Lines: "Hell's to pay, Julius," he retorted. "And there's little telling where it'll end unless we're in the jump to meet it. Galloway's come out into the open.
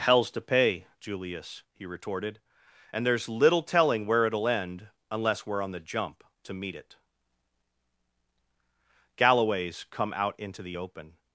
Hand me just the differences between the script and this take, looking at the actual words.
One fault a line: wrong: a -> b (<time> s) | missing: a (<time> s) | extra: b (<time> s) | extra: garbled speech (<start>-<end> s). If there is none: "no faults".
wrong: in -> on (5.6 s)